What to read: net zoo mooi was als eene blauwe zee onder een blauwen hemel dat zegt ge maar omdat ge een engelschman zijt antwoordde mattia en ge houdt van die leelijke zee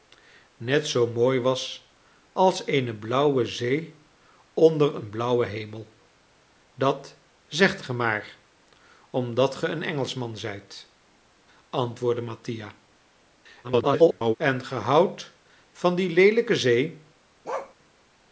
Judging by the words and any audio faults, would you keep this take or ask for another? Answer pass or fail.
fail